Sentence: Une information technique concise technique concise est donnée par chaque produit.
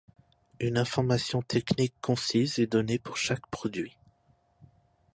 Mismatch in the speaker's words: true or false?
true